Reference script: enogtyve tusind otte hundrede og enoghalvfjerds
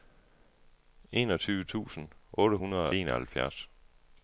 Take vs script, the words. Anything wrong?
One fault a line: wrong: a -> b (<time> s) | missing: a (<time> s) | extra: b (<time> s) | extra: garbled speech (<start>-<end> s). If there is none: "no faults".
missing: og (2.9 s)